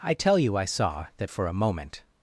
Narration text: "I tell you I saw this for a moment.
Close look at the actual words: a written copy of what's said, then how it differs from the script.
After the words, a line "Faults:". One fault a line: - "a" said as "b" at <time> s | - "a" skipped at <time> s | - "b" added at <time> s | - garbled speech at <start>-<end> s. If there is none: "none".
"I tell you I saw that for a moment.
Faults:
- "this" said as "that" at 1.2 s